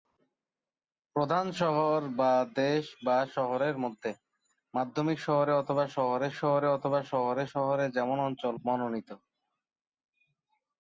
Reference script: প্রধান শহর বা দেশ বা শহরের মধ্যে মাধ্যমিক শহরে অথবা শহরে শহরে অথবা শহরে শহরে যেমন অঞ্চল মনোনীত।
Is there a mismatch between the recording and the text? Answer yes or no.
no